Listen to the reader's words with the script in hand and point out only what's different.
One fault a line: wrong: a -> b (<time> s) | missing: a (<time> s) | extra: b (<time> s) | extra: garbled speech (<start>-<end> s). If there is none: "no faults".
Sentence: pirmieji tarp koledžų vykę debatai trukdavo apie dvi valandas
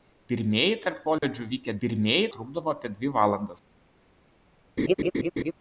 wrong: debatai -> pirmieji (1.8 s)